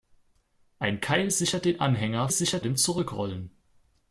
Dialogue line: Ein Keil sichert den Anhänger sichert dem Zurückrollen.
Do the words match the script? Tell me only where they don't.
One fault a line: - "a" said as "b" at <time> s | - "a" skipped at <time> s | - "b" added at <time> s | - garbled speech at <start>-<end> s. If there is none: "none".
none